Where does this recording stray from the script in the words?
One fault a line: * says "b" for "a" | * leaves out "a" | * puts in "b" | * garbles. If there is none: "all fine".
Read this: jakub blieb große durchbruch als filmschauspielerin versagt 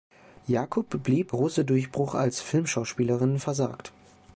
all fine